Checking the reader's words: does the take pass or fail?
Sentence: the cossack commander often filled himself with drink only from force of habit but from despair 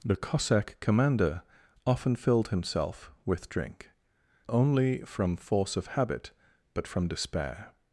pass